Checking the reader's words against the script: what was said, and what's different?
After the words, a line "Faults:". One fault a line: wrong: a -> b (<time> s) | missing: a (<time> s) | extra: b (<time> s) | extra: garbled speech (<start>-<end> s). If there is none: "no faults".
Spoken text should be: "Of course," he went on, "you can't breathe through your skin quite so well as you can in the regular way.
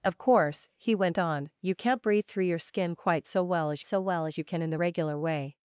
"Of course," he went on, "you can't breathe through your skin quite so well as so well as you can in the regular way.
Faults:
extra: so well as (3.8 s)